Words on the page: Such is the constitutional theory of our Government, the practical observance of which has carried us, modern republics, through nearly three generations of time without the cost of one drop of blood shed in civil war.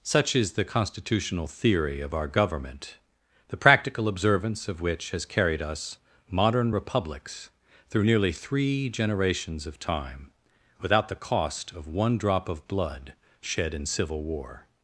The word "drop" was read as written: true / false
true